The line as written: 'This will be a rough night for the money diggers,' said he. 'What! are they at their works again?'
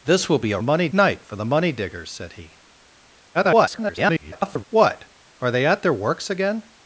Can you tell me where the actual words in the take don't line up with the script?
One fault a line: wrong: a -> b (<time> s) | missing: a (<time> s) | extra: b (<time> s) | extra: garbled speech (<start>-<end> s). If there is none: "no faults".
wrong: rough -> money (0.6 s)
extra: garbled speech (3.3-4.6 s)